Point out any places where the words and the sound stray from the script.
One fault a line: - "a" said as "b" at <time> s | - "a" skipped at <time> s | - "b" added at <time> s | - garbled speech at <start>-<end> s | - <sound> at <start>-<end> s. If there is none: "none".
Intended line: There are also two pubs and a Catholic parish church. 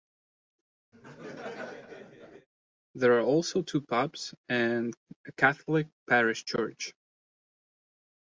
- laugh at 0.9-2.5 s